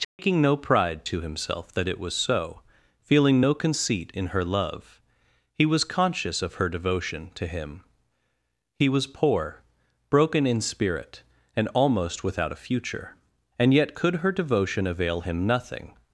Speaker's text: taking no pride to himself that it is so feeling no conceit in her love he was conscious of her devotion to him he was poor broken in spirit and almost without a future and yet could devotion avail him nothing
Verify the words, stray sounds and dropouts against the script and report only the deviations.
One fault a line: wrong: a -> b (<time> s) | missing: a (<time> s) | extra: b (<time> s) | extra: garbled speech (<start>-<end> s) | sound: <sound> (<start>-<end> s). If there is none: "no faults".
sound: dropout (0.0-0.2 s)
wrong: is -> was (2.0 s)
extra: her (14.2 s)